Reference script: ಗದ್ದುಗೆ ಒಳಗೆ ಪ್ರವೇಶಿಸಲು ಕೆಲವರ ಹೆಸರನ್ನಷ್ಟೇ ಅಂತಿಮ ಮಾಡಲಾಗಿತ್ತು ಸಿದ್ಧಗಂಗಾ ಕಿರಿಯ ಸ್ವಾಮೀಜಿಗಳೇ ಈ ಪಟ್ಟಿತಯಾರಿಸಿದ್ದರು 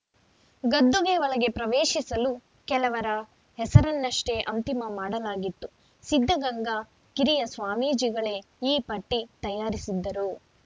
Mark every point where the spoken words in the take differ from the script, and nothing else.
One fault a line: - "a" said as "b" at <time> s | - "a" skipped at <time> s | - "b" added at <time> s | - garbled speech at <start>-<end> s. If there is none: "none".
none